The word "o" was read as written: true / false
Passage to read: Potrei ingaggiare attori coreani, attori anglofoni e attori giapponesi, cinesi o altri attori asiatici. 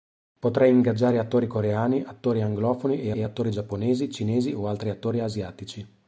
true